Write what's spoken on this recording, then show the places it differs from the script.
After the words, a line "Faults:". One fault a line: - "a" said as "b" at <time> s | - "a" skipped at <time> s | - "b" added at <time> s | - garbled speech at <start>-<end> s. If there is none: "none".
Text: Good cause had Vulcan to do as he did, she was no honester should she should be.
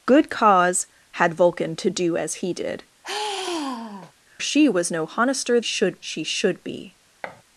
Good cause had Vulcan to do as he did, she was no honester should she should be.
Faults:
none